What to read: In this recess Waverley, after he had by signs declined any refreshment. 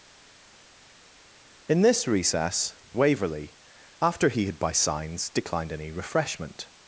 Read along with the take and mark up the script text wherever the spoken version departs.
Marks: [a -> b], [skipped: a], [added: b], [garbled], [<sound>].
In this recess Waverley, after he had by signs declined any refreshment.